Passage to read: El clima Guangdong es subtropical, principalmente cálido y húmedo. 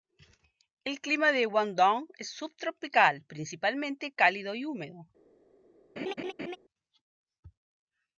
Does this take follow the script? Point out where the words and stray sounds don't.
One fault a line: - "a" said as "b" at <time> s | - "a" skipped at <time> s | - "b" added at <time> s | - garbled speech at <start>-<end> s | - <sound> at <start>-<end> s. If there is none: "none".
- "de" added at 1.3 s
- laugh at 6.0-6.6 s